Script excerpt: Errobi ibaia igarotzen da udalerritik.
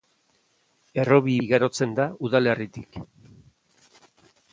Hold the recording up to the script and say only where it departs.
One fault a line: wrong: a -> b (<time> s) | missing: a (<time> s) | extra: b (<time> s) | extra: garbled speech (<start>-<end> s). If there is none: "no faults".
missing: ibaia (1.4 s)